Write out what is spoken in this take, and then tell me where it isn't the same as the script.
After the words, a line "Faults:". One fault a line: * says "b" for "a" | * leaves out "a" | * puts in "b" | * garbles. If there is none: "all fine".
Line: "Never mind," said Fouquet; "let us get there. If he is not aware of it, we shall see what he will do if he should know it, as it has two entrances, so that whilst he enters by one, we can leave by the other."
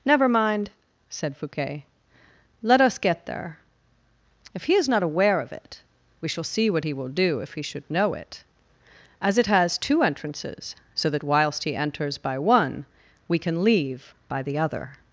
"Never mind," said Fouquet; "let us get there. If he is not aware of it, we shall see what he will do if he should know it, as it has two entrances, so that whilst he enters by one, we can leave by the other."
Faults:
all fine